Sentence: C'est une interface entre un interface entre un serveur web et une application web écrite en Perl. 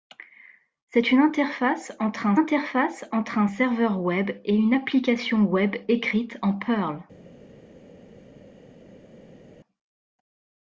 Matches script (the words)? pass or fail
pass